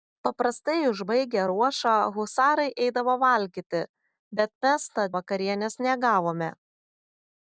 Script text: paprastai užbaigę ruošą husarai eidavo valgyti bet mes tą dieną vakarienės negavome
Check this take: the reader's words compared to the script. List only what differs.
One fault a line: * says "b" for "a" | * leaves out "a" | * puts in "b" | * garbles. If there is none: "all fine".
* leaves out "dieną"